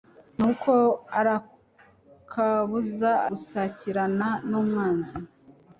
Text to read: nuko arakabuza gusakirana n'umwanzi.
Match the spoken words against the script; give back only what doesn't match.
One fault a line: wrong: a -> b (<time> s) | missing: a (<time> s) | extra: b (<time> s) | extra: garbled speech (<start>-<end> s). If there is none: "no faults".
no faults